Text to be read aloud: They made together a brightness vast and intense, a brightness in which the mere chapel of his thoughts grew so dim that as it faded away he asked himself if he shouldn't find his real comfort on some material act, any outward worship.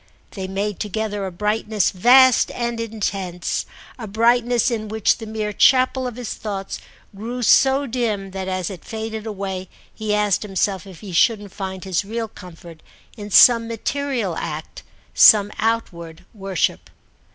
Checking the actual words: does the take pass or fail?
fail